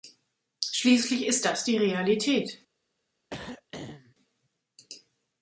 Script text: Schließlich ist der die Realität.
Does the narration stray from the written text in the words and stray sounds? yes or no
yes